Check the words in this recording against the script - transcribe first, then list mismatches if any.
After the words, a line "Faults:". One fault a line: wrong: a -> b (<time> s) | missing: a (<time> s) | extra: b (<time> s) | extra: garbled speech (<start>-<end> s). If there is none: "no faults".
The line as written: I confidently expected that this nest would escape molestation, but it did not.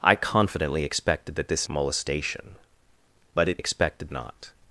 I confidently expected that this molestation, but it expected not.
Faults:
missing: nest would escape (1.7 s)
wrong: did -> expected (3.6 s)